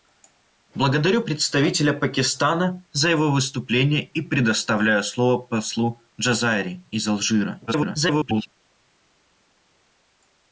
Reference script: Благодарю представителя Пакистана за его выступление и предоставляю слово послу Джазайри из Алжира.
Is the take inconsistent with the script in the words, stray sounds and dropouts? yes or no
yes